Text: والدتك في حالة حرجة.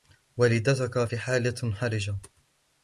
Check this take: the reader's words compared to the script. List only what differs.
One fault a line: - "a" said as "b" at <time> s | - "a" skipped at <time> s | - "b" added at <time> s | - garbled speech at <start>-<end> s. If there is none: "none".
none